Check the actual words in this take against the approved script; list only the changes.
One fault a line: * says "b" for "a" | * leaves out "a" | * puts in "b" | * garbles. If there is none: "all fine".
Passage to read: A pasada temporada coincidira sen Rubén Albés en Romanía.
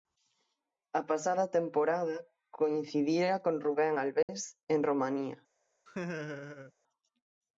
* says "con" for "sen"